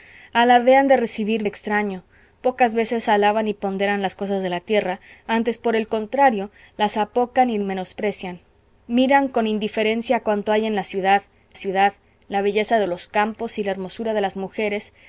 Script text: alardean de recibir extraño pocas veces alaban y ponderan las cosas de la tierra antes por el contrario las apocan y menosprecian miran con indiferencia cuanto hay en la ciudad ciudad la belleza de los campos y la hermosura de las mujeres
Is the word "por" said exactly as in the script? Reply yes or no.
yes